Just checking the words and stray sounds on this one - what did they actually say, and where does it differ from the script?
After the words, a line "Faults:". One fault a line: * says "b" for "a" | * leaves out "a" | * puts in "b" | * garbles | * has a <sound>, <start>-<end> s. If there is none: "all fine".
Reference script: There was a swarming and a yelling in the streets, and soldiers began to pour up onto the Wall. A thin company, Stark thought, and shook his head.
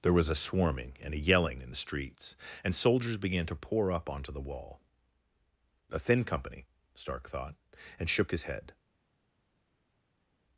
There was a swarming and a yelling in the streets, and soldiers began to pour up onto the Wall. A thin company, Stark thought, and shook his head.
Faults:
all fine